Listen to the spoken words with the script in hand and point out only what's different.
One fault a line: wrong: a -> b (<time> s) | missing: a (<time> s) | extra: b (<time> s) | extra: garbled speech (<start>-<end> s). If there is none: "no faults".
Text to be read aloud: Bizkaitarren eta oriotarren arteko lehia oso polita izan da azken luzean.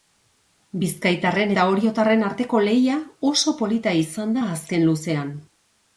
no faults